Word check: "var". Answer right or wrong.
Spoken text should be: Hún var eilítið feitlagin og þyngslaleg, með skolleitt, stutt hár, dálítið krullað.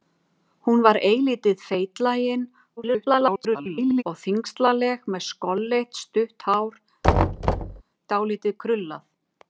right